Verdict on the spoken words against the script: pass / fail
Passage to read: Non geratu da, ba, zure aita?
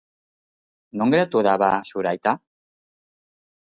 pass